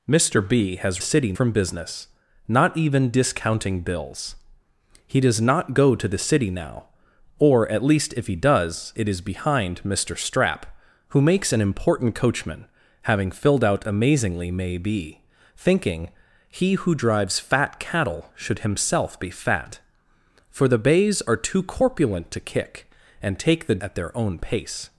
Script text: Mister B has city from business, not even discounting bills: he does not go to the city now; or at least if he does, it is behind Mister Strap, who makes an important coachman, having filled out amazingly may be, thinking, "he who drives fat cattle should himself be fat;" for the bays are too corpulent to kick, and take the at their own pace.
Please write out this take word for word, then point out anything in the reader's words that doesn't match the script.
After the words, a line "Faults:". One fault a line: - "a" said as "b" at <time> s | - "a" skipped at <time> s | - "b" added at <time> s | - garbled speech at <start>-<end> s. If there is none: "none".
Mister B has city from business, not even discounting bills: he does not go to the city now; or at least if he does, it is behind Mister Strap, who makes an important coachman, having filled out amazingly may be, thinking, "he who drives fat cattle should himself be fat;" for the bays are too corpulent to kick, and take the at their own pace.
Faults:
none